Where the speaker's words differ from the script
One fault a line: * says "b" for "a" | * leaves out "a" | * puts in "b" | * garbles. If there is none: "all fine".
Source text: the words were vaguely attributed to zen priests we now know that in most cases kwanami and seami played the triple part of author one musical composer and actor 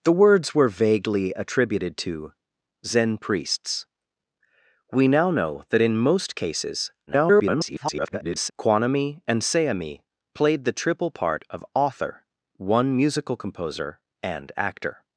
* garbles